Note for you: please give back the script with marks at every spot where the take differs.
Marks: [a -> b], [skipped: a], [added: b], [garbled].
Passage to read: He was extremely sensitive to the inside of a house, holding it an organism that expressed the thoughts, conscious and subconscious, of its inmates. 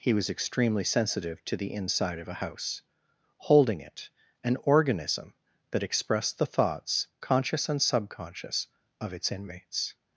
He was extremely sensitive to the inside of a house, holding it an organism that expressed the thoughts, conscious and subconscious, of its inmates.